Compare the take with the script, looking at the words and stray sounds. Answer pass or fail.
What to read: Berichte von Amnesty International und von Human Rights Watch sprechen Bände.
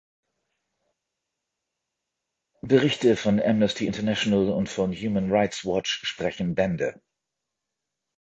pass